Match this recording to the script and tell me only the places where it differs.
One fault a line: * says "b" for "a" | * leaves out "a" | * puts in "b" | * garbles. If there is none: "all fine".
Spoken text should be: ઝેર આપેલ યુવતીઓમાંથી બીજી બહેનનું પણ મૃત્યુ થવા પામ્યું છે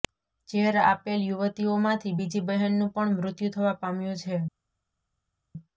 all fine